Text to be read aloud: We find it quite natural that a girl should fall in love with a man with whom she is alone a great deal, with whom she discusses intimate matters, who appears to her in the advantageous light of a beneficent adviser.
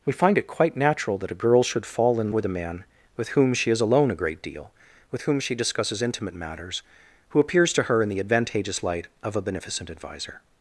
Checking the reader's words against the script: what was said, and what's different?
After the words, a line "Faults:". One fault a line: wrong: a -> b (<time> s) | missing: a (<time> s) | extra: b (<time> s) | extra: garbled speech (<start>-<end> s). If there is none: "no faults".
We find it quite natural that a girl should fall in with a man with whom she is alone a great deal, with whom she discusses intimate matters, who appears to her in the advantageous light of a beneficent adviser.
Faults:
missing: love (2.3 s)